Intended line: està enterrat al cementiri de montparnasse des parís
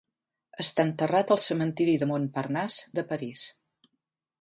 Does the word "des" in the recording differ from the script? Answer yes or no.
yes